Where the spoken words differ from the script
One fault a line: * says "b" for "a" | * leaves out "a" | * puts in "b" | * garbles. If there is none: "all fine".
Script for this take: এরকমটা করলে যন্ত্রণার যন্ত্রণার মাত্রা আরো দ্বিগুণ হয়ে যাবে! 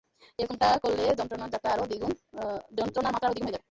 * leaves out "যন্ত্রণার"